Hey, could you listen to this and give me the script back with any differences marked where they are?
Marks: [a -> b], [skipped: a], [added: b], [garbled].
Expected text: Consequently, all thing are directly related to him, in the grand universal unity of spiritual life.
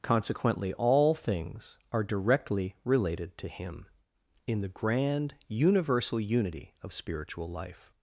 Consequently, all [thing -> things] are directly related to him, in the grand universal unity of spiritual life.